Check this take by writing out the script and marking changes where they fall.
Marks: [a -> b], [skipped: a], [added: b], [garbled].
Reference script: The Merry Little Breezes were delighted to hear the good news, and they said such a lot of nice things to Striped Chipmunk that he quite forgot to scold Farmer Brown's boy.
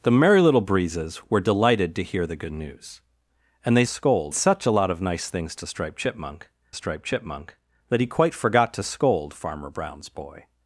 The Merry Little Breezes were delighted to hear the good news, and they [said -> scold] such a lot of nice things to Striped Chipmunk [added: Striped Chipmunk] that he quite forgot to scold Farmer Brown's boy.